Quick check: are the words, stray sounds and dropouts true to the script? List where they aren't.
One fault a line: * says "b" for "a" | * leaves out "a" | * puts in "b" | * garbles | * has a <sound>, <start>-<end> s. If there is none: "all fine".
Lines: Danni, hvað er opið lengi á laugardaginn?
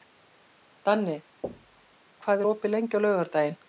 * has a thud, 1.4-2.0 s